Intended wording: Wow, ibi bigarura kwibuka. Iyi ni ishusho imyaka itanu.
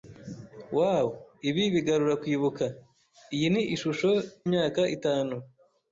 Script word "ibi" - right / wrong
right